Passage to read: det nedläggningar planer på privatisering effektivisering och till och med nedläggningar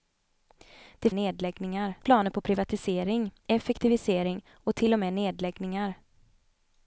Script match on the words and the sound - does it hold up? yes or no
yes